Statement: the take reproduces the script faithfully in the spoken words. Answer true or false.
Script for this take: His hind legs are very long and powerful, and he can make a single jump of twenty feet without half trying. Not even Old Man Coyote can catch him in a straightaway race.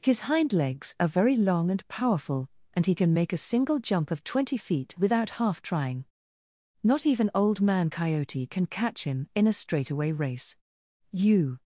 false